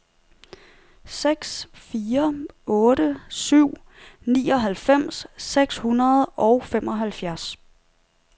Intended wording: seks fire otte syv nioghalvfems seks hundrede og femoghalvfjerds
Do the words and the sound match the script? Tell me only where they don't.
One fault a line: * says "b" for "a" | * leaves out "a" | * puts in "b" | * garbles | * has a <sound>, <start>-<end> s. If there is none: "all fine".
all fine